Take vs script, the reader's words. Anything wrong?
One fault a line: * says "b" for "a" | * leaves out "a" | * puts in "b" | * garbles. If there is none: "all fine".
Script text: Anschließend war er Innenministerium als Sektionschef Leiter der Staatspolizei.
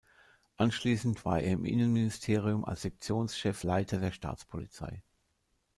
* puts in "im"